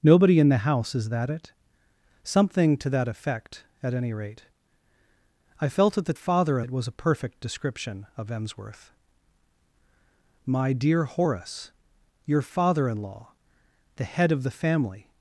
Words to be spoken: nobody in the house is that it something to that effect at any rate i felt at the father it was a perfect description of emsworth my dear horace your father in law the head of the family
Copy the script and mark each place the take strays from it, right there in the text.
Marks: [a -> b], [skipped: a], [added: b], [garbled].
nobody in the house is that it something to that effect at any rate i felt at the father it was a perfect description of emsworth my dear horace your father in law the head of the family